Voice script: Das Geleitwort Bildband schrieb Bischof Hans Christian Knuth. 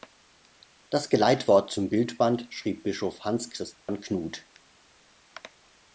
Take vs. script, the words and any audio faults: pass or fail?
fail